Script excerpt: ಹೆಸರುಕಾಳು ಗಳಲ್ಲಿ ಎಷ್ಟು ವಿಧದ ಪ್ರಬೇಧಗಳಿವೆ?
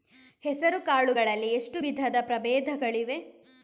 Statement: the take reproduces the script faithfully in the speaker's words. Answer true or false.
true